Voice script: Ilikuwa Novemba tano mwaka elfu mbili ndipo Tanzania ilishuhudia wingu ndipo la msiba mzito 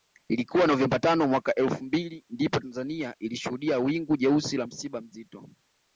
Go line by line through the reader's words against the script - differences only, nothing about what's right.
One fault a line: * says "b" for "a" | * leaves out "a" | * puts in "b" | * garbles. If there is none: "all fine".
* says "jeusi" for "ndipo"